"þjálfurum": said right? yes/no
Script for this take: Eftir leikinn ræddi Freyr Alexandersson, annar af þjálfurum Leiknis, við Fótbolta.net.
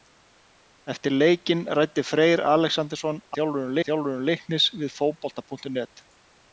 yes